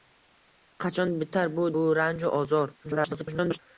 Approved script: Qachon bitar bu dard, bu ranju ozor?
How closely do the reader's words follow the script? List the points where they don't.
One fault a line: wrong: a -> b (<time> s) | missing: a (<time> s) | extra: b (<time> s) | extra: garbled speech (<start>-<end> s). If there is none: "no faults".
missing: dard (1.7 s)
extra: garbled speech (2.8-3.6 s)